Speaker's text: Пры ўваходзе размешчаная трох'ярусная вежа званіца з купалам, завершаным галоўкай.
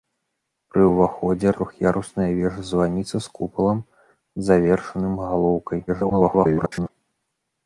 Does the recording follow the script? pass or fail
fail